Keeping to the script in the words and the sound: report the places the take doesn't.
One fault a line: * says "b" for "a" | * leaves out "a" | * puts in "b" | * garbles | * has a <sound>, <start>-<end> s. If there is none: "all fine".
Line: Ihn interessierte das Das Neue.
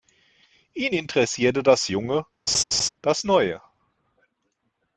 * puts in "Junge"
* has a laugh, 2.5-2.9 s